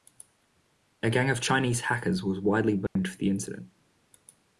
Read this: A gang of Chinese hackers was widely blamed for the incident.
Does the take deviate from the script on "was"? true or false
false